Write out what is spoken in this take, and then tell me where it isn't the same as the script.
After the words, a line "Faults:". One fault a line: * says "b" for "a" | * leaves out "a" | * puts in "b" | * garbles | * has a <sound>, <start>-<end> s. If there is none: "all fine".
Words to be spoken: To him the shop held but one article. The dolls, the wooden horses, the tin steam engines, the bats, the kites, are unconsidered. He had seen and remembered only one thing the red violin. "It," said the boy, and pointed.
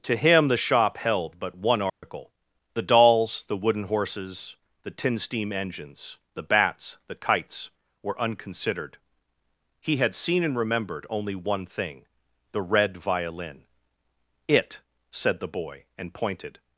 To him the shop held but one article. The dolls, the wooden horses, the tin steam engines, the bats, the kites, were unconsidered. He had seen and remembered only one thing the red violin. "It," said the boy, and pointed.
Faults:
* has a dropout, 1.9-2.0 s
* says "were" for "are"